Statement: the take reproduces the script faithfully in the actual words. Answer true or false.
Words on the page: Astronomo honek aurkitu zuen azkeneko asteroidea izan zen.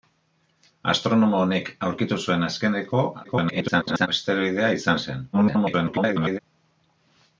false